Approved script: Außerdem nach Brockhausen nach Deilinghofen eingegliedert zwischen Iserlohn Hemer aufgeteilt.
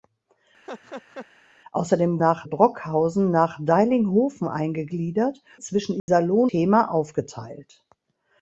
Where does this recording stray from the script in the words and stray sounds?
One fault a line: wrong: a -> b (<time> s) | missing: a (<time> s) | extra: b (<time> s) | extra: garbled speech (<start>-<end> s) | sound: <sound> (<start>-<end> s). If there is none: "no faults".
sound: laugh (0.6-1.3 s)
sound: dropout (6.0-6.1 s)